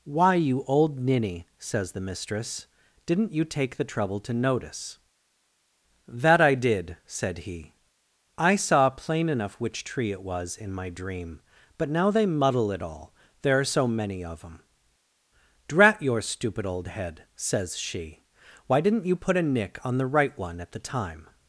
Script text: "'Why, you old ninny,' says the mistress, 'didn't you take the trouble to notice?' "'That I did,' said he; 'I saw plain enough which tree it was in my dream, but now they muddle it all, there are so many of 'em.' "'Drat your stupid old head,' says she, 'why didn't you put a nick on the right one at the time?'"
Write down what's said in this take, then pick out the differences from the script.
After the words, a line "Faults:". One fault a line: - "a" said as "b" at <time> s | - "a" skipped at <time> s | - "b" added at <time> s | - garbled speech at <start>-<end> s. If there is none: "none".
"'Why, you old ninny,' says the mistress, 'didn't you take the trouble to notice?' "'That I did,' said he; 'I saw plain enough which tree it was in my dream, but now they muddle it all, there are so many of 'em.' "'Drat your stupid old head,' says she, 'why didn't you put a nick on the right one at the time?'"
Faults:
none